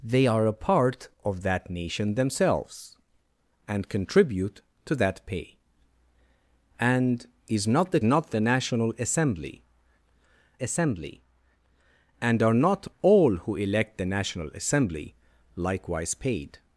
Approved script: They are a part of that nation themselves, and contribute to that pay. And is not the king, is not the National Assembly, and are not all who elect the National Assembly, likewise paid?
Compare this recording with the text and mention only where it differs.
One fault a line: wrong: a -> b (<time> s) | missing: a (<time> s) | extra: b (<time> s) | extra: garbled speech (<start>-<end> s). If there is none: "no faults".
missing: king is (8.0 s)
extra: Assembly (10.6 s)